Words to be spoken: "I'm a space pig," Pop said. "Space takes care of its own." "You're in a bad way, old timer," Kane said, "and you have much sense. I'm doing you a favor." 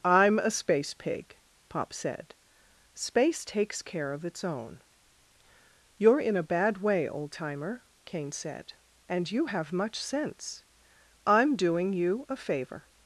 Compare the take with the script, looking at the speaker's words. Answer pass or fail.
pass